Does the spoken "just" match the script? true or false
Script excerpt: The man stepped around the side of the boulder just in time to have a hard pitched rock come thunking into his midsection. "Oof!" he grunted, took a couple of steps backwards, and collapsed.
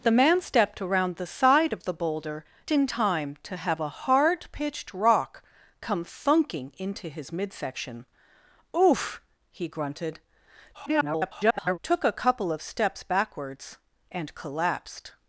false